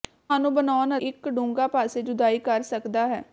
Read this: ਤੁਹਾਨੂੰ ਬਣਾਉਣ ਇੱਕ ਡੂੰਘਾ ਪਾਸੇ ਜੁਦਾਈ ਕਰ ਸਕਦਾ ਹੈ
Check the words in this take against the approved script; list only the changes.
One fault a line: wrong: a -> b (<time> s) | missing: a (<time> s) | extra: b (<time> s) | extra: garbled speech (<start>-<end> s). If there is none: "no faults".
no faults